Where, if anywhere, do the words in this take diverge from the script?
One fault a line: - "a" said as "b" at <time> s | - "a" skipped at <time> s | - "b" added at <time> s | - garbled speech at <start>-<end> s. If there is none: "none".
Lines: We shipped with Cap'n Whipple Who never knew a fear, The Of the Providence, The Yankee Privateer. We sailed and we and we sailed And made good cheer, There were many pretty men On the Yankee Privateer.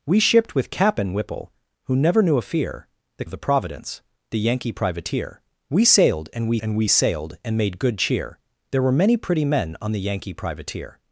none